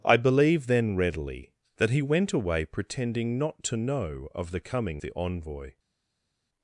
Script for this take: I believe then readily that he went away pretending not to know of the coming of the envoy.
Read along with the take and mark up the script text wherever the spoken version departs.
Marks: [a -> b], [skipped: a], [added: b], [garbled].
I believe then readily that he went away pretending not to know of the coming [skipped: of] the envoy.